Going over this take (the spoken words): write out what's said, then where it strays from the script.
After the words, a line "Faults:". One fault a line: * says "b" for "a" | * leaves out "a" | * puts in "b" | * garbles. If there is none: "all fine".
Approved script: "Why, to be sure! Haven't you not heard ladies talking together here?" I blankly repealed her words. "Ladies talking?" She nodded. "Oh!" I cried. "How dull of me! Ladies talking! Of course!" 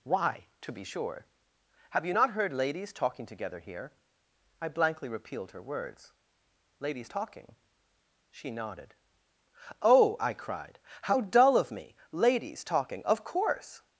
"Why, to be sure! Have you not heard ladies talking together here?" I blankly repealed her words. "Ladies talking?" She nodded. "Oh!" I cried. "How dull of me! Ladies talking! Of course!"
Faults:
* says "Have" for "Haven't"